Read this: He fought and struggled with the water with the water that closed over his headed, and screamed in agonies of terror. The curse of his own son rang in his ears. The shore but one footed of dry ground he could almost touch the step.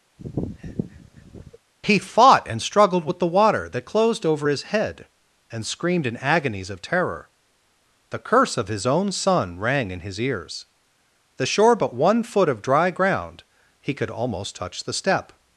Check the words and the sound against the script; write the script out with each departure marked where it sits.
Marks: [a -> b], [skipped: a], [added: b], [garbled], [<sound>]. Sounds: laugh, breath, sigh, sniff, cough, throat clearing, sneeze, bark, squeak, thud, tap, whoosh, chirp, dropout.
[sniff] He fought and struggled with the water [skipped: with the water] that closed over his [headed, -> head] and screamed in agonies of terror. The curse of his own son rang in his ears. The shore but one [footed -> foot] of dry ground he could almost touch the step.